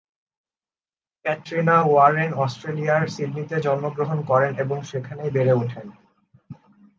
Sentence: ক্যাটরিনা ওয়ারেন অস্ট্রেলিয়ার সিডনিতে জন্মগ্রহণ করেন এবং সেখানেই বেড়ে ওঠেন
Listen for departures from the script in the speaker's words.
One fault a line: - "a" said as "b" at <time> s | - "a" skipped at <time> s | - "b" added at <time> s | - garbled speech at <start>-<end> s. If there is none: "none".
none